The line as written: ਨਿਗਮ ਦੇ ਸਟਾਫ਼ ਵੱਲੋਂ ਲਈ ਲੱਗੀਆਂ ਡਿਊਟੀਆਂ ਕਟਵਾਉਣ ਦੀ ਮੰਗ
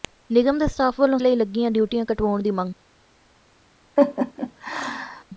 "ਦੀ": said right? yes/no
yes